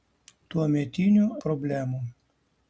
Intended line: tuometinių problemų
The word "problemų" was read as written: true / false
true